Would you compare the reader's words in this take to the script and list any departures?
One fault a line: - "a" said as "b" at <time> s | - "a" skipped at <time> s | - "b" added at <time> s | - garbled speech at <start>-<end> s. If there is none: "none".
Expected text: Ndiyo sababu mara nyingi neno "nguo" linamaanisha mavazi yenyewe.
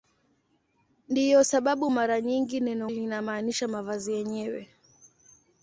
- "nguo" skipped at 2.9 s